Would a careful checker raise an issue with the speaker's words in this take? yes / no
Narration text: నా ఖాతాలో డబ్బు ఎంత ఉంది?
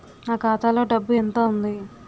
no